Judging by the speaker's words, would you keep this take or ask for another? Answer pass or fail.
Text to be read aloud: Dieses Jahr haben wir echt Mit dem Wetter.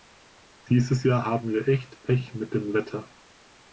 fail